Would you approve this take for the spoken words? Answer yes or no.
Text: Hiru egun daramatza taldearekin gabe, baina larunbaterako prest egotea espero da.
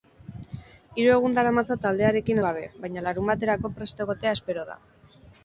yes